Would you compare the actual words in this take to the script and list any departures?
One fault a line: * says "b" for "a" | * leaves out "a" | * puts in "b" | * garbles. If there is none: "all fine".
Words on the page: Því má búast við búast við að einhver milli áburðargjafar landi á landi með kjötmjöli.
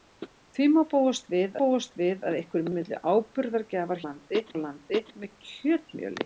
all fine